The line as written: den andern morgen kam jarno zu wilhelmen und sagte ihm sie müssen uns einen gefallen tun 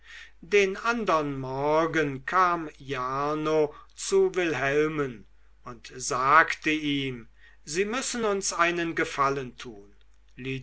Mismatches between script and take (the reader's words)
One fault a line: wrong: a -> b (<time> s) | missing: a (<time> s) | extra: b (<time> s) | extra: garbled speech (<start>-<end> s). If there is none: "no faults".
no faults